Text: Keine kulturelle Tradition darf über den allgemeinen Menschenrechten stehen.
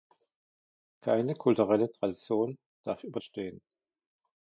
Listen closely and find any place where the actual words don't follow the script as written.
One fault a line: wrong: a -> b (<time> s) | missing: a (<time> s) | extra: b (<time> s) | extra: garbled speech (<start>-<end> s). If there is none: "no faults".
missing: den allgemeinen Menschenrechten (3.2 s)